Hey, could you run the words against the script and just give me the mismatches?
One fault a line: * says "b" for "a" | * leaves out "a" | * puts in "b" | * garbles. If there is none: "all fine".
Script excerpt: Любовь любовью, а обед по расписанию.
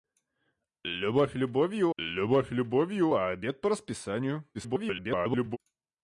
* puts in "любовь любовью"
* garbles